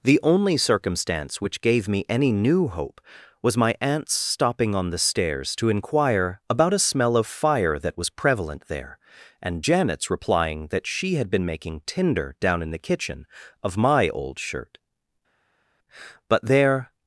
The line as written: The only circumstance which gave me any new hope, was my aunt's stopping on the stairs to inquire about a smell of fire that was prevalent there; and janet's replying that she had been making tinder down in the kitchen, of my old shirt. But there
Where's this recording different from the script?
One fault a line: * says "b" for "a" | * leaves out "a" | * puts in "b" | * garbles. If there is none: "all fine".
all fine